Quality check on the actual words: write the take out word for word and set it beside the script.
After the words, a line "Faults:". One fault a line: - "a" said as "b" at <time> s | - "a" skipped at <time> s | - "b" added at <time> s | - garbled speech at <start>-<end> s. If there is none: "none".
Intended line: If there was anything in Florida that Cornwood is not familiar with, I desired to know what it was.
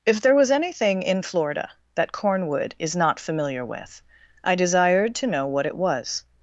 If there was anything in Florida that Cornwood is not familiar with, I desired to know what it was.
Faults:
none